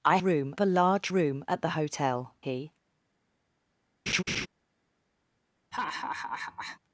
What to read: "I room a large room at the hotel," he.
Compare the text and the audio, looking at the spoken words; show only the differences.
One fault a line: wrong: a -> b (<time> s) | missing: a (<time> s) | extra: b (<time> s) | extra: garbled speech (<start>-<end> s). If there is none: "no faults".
no faults